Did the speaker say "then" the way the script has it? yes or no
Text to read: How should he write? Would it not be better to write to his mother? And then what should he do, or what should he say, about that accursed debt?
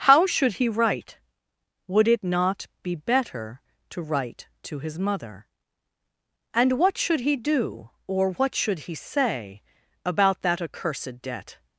no